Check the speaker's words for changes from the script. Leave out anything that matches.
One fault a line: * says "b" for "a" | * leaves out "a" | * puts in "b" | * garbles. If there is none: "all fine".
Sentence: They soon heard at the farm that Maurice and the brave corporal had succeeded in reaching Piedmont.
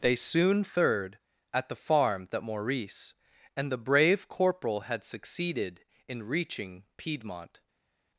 * says "third" for "heard"